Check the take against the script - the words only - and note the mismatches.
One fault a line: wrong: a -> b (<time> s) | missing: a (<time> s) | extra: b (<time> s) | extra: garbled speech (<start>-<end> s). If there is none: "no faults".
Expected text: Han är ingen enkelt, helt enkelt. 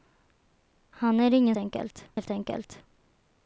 no faults